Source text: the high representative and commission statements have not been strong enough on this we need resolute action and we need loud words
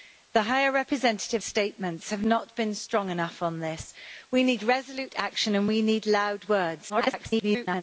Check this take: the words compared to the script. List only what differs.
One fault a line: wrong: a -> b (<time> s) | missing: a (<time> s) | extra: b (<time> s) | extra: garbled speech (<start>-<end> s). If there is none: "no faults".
missing: and commission (1.4 s)
extra: garbled speech (6.9-7.8 s)